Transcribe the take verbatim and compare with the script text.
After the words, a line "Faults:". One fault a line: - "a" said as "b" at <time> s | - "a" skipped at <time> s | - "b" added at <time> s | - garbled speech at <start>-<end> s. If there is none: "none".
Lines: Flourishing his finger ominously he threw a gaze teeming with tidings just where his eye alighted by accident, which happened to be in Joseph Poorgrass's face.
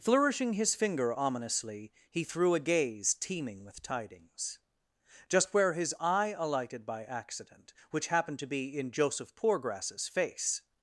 Flourishing his finger ominously he threw a gaze teeming with tidings just where his eye alighted by accident, which happened to be in Joseph Poorgrass's face.
Faults:
none